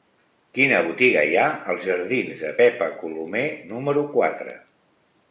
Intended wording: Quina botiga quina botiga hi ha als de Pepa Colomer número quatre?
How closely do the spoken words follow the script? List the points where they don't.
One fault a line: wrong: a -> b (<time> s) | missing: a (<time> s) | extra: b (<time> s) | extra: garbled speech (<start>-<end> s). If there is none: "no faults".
missing: quina botiga (1.2 s)
extra: jardins (1.9 s)